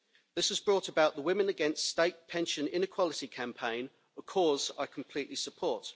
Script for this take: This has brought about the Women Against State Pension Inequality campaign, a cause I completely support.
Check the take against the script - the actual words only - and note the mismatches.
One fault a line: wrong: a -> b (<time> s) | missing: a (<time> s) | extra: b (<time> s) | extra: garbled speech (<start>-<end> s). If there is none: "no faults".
no faults